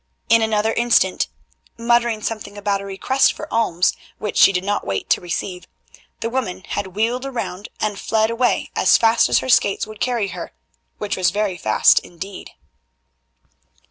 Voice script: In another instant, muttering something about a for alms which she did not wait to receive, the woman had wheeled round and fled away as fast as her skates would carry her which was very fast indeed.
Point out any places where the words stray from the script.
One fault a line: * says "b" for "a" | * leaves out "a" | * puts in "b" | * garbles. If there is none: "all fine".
* puts in "request"